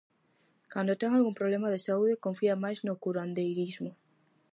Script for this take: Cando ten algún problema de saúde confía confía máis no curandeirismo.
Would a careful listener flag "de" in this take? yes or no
no